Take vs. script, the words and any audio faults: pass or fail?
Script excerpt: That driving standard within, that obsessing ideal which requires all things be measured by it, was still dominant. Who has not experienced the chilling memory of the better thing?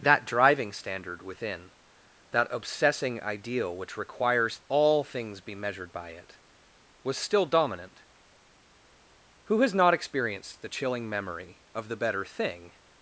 pass